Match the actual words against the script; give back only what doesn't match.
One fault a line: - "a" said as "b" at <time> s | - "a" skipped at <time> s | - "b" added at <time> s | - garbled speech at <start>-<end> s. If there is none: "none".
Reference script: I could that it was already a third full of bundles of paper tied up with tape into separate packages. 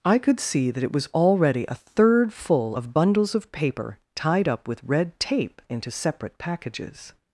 - "see" added at 0.4 s
- "red" added at 4.8 s